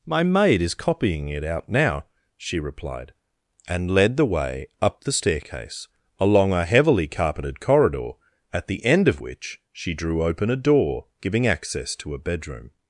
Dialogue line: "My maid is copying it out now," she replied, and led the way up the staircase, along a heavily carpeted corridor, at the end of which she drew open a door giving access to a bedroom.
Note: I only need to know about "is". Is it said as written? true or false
true